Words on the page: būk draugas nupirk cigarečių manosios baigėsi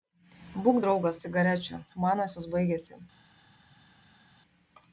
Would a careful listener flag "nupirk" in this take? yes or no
yes